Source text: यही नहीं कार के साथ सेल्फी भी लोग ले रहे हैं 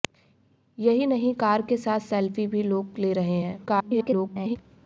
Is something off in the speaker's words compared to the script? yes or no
yes